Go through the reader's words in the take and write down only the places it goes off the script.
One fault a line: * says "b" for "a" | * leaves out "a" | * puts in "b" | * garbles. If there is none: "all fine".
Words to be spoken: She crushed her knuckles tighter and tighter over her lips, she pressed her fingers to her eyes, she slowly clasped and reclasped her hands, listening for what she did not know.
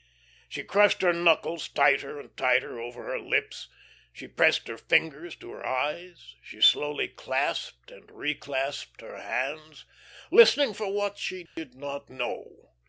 all fine